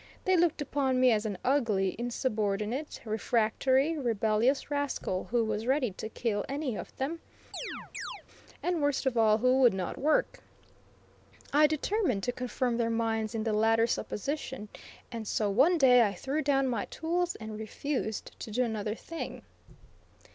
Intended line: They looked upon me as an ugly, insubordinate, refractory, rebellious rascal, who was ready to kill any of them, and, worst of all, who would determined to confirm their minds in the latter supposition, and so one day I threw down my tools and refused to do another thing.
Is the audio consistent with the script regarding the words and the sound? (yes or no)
no